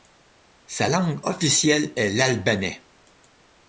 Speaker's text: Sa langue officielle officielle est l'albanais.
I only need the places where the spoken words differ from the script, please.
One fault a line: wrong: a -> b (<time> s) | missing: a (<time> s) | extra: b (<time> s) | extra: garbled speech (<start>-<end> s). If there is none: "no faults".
missing: officielle (1.9 s)